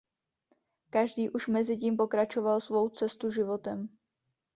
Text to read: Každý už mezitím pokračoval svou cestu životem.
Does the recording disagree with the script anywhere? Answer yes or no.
no